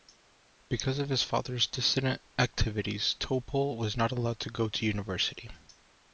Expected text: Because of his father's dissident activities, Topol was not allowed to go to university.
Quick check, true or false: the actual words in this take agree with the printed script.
true